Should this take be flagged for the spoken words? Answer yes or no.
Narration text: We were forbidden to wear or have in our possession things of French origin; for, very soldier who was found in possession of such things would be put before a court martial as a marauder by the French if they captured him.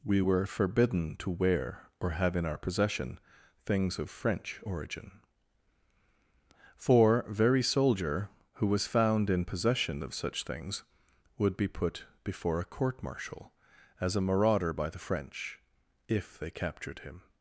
no